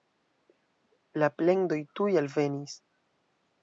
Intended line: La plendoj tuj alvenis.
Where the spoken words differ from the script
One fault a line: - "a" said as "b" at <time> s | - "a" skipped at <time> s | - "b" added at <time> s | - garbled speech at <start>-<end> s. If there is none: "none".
none